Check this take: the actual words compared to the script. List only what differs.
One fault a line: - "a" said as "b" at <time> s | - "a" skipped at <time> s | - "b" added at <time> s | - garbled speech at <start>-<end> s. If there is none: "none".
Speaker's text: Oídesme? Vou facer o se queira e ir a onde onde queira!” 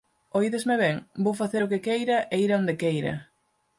- "ben" added at 0.8 s
- "se" said as "que" at 1.7 s
- "onde" skipped at 2.7 s